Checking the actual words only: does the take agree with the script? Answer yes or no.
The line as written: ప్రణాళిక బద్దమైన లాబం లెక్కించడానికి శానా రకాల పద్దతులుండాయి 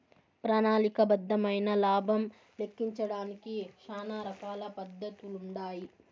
yes